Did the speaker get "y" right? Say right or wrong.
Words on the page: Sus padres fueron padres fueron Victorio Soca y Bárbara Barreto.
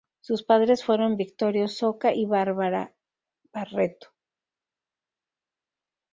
right